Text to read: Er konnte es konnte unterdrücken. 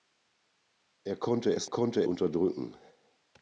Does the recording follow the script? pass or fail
pass